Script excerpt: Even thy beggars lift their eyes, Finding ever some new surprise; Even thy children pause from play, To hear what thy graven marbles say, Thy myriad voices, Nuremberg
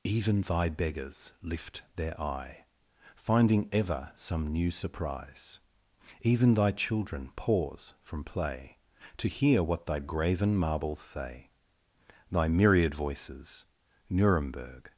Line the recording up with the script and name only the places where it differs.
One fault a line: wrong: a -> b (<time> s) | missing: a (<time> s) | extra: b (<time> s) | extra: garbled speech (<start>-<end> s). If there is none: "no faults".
wrong: eyes -> eye (2.2 s)